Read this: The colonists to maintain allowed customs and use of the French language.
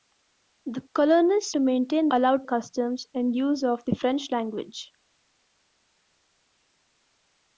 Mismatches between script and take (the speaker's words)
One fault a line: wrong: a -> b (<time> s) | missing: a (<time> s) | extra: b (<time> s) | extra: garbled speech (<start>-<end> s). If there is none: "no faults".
no faults